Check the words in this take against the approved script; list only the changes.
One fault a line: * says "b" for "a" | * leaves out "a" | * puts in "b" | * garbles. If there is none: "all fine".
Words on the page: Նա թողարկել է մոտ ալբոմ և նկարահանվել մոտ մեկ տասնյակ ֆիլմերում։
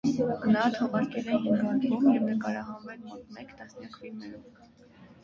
* says "հինգ" for "մոտ"